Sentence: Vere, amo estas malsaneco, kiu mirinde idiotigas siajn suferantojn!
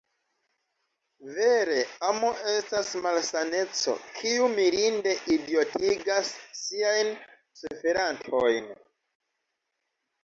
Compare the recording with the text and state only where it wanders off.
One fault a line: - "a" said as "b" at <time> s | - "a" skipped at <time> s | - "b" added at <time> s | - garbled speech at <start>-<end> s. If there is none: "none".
none